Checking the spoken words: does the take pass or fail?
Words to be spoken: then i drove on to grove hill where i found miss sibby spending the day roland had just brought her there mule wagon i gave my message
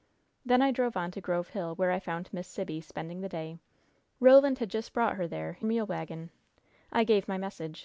pass